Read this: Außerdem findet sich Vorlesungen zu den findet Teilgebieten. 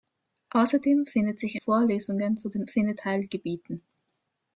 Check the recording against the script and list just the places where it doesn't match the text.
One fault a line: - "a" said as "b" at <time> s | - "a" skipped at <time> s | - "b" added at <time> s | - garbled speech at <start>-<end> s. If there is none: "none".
none